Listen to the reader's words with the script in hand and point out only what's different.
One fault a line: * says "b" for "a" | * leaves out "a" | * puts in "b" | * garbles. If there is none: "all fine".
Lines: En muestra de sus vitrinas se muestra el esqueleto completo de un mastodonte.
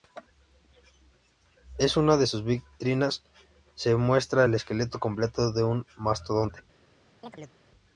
* says "una" for "muestra"